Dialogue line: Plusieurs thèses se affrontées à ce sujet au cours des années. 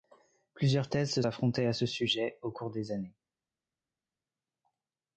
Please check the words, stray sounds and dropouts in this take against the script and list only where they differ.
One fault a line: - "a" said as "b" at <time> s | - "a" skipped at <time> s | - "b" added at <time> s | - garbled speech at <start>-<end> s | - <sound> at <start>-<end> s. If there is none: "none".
none